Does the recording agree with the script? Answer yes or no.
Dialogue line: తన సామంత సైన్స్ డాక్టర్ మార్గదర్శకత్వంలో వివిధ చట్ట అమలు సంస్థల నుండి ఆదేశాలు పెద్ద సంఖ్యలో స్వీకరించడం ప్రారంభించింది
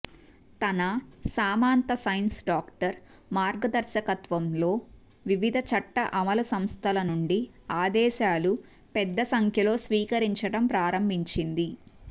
yes